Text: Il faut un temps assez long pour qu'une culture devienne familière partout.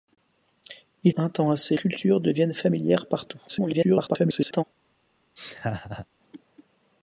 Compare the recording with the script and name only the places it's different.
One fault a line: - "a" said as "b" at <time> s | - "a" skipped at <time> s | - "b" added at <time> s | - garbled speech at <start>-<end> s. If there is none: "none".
- "faut" skipped at 1.1 s
- "long pour qu'une" skipped at 1.7 s
- garbled speech at 3.5-4.6 s